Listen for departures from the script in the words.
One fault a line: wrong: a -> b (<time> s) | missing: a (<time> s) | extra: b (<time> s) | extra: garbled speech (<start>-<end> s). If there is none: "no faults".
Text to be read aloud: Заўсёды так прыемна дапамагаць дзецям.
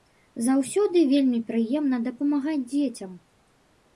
wrong: так -> вельмі (1.1 s)